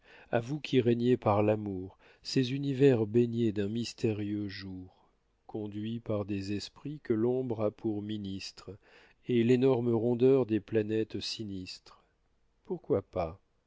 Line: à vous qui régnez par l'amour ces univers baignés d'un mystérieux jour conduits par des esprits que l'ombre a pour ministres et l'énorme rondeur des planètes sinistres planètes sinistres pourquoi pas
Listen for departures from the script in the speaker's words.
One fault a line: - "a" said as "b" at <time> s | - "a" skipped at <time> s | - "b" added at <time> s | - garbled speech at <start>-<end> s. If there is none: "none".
- "planètes sinistres" skipped at 12.0 s